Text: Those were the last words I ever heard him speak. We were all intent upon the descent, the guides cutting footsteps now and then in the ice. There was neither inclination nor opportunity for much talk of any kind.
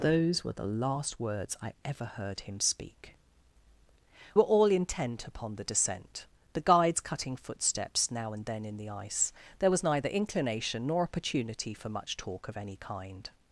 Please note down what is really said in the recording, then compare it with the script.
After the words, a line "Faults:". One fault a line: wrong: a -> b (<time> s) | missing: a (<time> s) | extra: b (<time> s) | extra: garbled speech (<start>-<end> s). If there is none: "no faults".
Those were the last words I ever heard him speak. Were all intent upon the descent, the guides cutting footsteps now and then in the ice. There was neither inclination nor opportunity for much talk of any kind.
Faults:
missing: We (3.1 s)